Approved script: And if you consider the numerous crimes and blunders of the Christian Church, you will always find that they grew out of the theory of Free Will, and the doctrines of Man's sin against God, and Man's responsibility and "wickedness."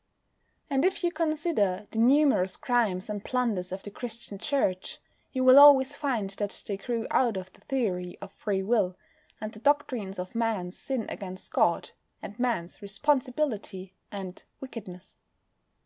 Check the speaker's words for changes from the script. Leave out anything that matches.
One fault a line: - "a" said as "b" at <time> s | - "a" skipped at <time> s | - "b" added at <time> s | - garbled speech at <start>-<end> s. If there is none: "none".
none